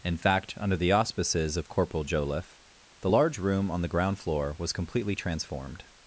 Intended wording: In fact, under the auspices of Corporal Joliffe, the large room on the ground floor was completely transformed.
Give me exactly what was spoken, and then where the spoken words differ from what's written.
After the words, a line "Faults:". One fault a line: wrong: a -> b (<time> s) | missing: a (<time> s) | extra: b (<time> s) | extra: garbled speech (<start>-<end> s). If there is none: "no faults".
In fact, under the auspices of Corporal Joliffe, the large room on the ground floor was completely transformed.
Faults:
no faults